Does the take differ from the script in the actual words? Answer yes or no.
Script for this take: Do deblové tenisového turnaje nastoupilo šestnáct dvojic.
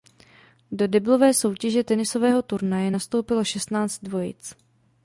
yes